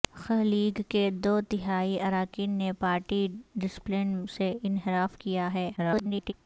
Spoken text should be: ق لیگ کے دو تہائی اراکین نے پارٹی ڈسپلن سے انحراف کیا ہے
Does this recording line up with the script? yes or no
no